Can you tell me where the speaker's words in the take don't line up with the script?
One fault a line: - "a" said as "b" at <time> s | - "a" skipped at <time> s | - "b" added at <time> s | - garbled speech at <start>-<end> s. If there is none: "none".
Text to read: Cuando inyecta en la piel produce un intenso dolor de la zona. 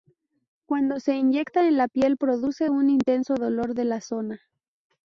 - "se" added at 1.0 s